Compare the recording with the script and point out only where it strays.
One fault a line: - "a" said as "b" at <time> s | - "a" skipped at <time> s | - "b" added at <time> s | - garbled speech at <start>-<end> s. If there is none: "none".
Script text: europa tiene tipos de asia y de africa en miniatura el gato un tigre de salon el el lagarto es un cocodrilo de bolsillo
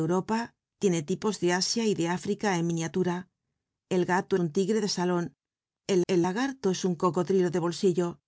none